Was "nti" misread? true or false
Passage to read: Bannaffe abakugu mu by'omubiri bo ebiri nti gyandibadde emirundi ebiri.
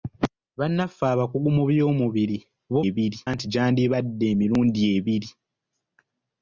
false